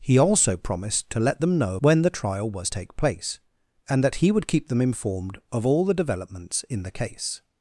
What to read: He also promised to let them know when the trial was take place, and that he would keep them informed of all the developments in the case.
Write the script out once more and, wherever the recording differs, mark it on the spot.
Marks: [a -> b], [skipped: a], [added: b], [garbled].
He also promised to let them know when the trial was take place, and that he would keep them informed of all the developments in the case.